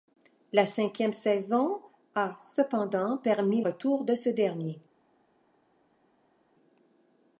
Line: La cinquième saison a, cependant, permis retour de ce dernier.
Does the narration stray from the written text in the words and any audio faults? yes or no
no